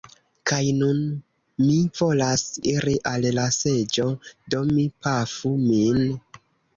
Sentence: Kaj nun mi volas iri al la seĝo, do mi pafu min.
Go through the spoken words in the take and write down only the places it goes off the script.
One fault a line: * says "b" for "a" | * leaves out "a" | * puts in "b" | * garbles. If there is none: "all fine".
all fine